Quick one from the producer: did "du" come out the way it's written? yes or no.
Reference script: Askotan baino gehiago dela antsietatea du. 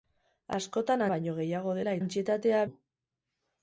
yes